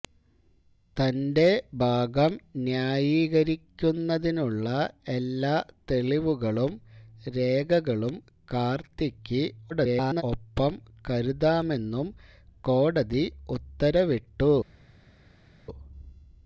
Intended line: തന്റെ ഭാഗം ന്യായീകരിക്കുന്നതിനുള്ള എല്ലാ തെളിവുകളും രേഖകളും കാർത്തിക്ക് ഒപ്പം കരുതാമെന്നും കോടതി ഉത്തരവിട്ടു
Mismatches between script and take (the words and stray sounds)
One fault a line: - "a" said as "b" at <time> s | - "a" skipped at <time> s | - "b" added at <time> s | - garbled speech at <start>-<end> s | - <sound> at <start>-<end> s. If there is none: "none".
- garbled speech at 9.7-10.2 s